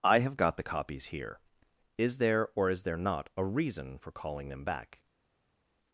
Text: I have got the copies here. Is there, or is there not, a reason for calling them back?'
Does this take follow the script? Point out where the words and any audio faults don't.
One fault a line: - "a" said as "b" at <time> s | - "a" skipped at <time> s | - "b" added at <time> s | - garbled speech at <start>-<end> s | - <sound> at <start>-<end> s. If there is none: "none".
none